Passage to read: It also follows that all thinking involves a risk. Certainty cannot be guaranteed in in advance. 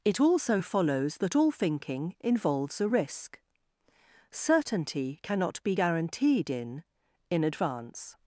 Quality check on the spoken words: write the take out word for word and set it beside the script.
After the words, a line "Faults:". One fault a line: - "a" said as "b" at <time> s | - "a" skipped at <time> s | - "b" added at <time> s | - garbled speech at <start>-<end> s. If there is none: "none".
It also follows that all thinking involves a risk. Certainty cannot be guaranteed in in advance.
Faults:
none